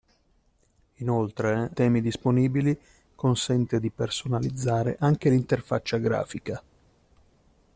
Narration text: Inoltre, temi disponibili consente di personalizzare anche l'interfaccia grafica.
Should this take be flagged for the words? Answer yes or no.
no